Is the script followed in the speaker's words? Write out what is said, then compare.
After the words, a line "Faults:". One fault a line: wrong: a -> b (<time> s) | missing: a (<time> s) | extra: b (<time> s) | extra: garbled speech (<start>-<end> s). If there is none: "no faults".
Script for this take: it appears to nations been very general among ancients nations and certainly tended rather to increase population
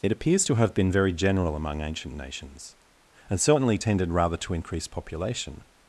it appears to have been very general among ancient nations and certainly tended rather to increase population
Faults:
wrong: nations -> have (0.5 s)
wrong: ancients -> ancient (1.8 s)